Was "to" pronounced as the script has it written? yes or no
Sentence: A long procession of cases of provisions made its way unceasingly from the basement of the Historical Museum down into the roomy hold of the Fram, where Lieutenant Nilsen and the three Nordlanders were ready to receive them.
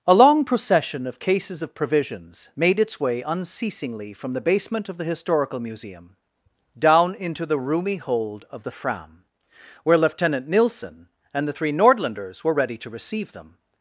yes